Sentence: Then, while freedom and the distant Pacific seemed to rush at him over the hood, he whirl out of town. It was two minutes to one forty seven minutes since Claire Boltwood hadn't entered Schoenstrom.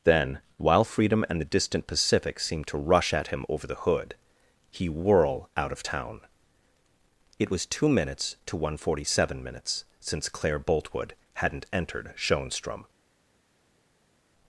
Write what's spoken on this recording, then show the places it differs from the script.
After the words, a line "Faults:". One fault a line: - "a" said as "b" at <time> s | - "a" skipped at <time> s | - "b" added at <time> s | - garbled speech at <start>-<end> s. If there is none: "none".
Then, while freedom and the distant Pacific seemed to rush at him over the hood, he whirl out of town. It was two minutes to one forty seven minutes since Claire Boltwood hadn't entered Schoenstrom.
Faults:
none